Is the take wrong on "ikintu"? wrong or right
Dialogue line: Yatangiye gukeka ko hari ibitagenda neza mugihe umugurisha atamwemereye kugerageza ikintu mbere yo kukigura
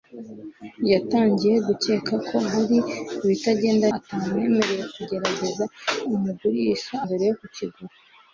wrong